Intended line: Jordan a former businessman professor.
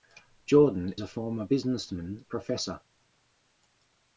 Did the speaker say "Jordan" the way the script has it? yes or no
yes